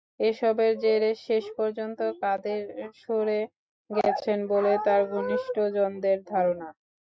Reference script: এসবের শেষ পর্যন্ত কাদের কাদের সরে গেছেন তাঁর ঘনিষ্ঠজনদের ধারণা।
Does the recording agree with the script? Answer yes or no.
no